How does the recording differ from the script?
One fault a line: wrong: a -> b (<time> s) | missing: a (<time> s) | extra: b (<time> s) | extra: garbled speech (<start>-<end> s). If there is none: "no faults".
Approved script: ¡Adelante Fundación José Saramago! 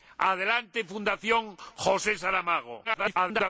extra: garbled speech (2.8-3.5 s)